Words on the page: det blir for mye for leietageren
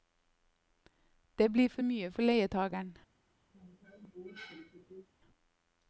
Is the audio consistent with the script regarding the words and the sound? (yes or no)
no